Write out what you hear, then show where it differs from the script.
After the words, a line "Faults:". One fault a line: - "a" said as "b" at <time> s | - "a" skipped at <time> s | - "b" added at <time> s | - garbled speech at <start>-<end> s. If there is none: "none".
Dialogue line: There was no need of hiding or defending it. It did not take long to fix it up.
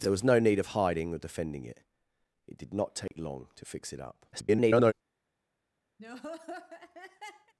There was no need of hiding or defending it. It did not take long to fix it up. [garbled]
Faults:
- garbled speech at 4.3-4.9 s